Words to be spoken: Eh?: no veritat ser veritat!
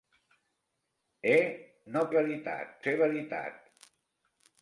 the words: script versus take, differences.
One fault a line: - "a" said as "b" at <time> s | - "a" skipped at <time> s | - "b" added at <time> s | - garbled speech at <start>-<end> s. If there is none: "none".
none